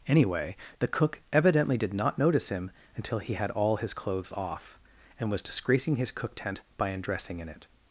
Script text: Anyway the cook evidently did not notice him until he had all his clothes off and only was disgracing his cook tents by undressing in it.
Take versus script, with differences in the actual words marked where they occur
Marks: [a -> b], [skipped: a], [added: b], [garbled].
Anyway the cook evidently did not notice him until he had all his clothes off and [skipped: only] was disgracing his cook [tents -> tent] by undressing in it.